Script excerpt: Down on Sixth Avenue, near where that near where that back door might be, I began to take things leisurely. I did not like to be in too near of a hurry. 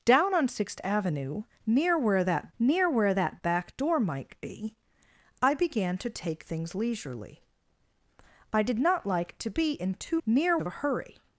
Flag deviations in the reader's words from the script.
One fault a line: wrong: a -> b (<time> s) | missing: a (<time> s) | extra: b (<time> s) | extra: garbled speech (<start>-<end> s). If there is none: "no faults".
no faults